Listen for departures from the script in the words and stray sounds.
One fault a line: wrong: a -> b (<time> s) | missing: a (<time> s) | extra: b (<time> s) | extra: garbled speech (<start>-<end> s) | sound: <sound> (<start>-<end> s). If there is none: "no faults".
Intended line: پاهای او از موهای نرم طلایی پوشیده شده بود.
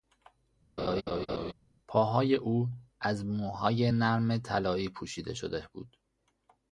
sound: laugh (0.8-1.5 s)